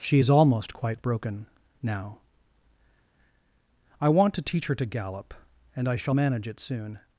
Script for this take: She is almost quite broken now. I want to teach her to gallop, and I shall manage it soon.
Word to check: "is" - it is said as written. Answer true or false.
true